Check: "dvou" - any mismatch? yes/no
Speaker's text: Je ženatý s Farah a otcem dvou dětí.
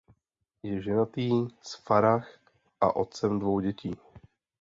no